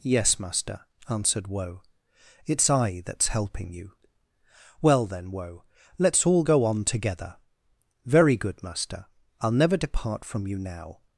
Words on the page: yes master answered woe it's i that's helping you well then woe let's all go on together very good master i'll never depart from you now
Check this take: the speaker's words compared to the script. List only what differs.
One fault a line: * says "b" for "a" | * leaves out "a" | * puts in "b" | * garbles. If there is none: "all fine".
all fine